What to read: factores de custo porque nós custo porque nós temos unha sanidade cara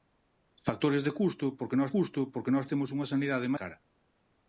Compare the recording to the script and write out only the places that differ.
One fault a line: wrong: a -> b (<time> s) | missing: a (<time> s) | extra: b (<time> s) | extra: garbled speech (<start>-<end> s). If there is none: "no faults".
no faults